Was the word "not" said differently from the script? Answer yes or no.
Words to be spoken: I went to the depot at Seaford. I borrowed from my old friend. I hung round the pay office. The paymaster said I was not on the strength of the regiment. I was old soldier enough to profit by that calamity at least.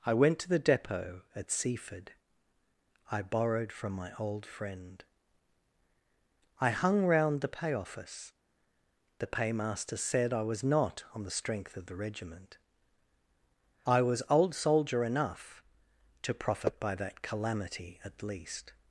no